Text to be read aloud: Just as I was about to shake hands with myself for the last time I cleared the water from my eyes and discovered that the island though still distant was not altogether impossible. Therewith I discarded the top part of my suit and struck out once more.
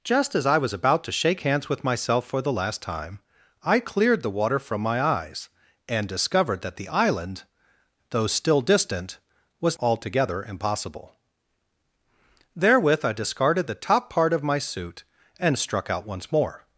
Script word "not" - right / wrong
wrong